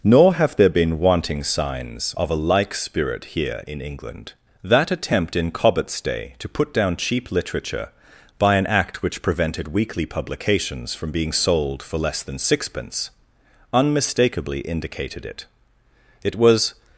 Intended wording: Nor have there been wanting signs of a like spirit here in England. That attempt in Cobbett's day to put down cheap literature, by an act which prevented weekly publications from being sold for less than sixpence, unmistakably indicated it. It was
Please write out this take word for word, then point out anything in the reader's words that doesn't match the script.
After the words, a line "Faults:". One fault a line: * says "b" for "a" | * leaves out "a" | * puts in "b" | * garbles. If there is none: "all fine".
Nor have there been wanting signs of a like spirit here in England. That attempt in Cobbett's day to put down cheap literature, by an act which prevented weekly publications from being sold for less than sixpence, unmistakably indicated it. It was
Faults:
all fine